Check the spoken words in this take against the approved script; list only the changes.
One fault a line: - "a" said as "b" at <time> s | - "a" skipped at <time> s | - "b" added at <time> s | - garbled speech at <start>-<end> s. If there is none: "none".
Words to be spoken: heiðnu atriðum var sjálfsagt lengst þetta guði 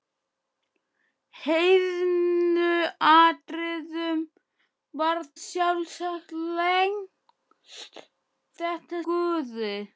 none